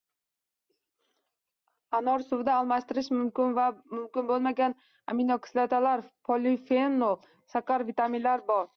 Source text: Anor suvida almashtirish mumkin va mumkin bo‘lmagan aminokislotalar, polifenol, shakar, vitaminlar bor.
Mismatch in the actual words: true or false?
false